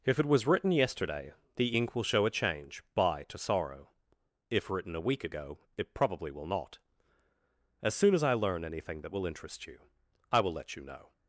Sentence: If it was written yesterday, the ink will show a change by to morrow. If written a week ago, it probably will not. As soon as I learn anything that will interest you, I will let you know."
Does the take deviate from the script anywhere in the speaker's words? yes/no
yes